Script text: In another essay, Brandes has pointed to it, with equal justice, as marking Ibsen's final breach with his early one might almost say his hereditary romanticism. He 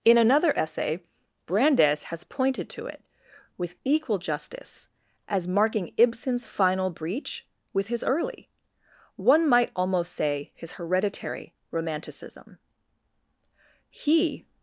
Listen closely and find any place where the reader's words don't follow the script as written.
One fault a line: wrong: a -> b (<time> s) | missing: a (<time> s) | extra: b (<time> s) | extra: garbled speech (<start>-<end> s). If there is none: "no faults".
no faults